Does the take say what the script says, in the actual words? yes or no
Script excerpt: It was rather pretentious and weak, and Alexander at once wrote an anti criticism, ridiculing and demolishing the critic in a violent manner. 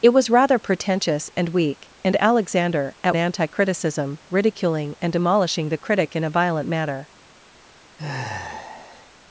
no